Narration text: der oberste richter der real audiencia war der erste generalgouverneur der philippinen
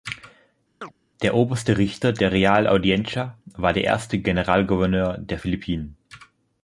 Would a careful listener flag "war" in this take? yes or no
no